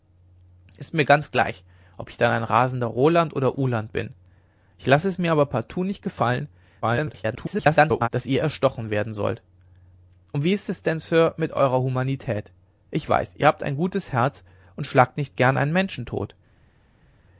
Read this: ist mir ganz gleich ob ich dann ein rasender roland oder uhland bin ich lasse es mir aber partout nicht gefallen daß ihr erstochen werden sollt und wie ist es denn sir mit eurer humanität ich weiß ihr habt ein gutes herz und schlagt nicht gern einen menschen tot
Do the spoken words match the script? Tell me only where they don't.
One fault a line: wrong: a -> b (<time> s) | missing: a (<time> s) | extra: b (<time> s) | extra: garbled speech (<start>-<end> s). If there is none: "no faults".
extra: garbled speech (6.8-8.1 s)